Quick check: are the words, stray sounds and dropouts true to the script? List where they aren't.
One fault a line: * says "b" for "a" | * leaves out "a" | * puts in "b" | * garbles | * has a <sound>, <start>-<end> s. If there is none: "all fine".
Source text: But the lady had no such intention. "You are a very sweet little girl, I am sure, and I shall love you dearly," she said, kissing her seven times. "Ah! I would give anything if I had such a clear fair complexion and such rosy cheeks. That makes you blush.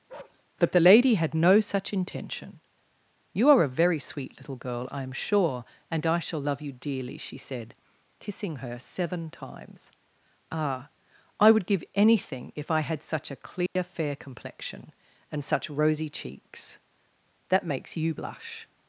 * has a bark, 0.1-0.4 s
* has a dropout, 13.7-13.8 s